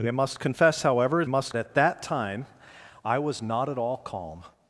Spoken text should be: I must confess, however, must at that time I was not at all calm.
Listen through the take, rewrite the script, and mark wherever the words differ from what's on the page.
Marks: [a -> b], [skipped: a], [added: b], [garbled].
I must confess, however, must at that time I was not at all calm.